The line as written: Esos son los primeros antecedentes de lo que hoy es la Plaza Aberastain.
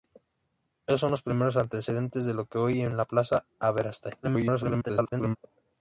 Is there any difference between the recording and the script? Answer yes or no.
yes